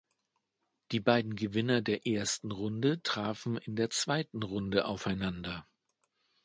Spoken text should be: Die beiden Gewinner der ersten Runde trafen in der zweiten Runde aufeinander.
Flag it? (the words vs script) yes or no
no